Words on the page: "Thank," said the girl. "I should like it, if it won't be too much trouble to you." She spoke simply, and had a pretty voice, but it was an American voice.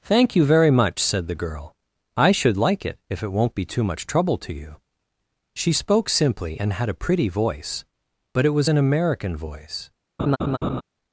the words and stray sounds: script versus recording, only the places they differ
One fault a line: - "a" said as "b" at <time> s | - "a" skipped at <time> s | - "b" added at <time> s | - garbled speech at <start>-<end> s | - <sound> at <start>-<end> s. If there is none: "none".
- "you very much" added at 0.3 s
- laugh at 10.2-10.8 s